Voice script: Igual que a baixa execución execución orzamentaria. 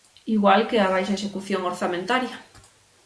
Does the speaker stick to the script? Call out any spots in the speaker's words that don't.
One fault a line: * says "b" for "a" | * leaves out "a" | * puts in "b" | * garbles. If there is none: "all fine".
* leaves out "execución"